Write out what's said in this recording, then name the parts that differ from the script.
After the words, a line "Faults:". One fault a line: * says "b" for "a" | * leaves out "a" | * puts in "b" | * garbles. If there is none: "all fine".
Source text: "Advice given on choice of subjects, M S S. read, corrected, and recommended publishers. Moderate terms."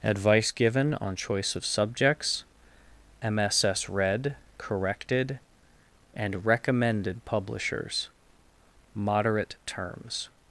"Advice given on choice of subjects, M S S. read, corrected, and recommended publishers. Moderate terms."
Faults:
all fine